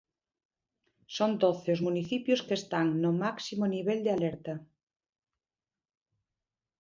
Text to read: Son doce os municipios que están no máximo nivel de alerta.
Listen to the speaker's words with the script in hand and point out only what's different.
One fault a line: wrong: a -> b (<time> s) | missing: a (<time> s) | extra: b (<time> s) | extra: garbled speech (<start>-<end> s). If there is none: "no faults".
no faults